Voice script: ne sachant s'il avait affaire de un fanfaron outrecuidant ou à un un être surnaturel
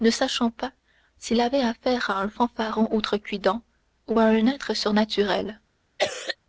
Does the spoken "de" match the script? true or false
false